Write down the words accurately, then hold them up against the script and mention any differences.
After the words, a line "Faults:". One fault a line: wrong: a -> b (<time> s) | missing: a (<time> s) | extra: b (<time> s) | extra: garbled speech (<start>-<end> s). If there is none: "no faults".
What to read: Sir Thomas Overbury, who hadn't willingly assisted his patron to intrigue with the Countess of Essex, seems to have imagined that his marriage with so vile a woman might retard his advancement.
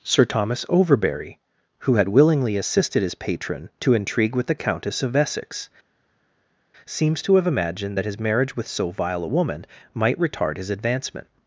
Sir Thomas Overbury, who had willingly assisted his patron to intrigue with the Countess of Essex, seems to have imagined that his marriage with so vile a woman might retard his advancement.
Faults:
wrong: hadn't -> had (1.9 s)